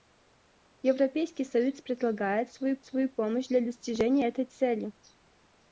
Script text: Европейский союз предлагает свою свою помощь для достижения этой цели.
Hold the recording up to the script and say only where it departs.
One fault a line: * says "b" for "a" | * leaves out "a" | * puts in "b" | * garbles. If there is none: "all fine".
all fine